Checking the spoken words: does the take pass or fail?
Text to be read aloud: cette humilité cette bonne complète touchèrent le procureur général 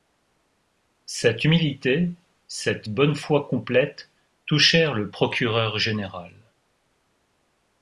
fail